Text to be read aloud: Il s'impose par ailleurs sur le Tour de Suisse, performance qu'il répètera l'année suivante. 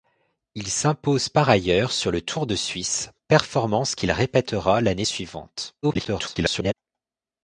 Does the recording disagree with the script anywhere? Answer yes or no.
yes